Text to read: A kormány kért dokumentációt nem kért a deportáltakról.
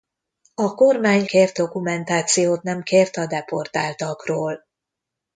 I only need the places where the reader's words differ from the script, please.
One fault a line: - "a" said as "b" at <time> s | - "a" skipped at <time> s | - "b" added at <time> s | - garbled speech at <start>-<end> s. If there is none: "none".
none